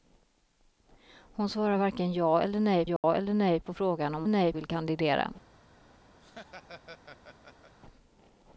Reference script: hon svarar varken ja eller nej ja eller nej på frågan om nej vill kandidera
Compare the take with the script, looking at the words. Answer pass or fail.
pass